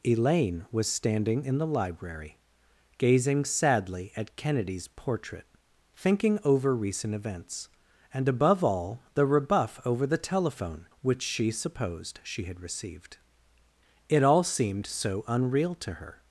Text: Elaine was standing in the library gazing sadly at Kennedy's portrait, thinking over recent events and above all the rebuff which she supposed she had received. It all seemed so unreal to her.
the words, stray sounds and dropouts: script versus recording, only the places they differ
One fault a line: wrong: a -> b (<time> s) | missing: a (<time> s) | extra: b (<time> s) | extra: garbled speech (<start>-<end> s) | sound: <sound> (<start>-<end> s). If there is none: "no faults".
extra: over the telephone (9.8 s)